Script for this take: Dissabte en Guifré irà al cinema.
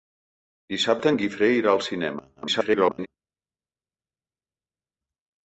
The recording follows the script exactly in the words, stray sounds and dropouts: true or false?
false